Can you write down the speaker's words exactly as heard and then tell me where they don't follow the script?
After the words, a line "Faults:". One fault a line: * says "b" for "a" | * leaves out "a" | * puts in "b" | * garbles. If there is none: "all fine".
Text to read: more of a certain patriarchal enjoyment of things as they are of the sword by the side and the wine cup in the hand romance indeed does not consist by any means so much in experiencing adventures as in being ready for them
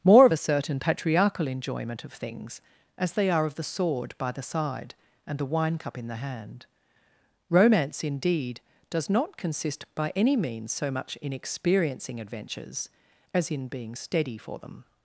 more of a certain patriarchal enjoyment of things as they are of the sword by the side and the wine cup in the hand romance indeed does not consist by any means so much in experiencing adventures as in being steady for them
Faults:
* says "steady" for "ready"